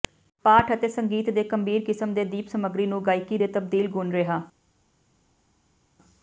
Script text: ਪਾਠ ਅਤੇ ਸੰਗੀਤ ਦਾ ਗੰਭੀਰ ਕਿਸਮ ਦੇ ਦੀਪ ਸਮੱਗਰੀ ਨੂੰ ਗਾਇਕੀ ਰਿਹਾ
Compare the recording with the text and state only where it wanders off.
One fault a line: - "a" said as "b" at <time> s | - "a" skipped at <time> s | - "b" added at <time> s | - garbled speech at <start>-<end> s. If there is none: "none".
- "ਦਾ" said as "ਦੇ" at 1.3 s
- "ਦੇ ਤਬਦੀਲ ਗੁਣ" added at 3.3 s